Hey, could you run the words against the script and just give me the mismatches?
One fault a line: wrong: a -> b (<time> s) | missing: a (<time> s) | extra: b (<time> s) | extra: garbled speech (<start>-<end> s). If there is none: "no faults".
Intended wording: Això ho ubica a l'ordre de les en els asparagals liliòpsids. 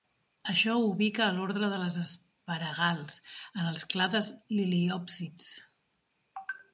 extra: asparagals (2.0 s)
wrong: asparagals -> clades (3.9 s)